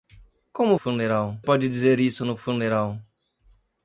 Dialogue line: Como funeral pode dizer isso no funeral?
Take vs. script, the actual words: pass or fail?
pass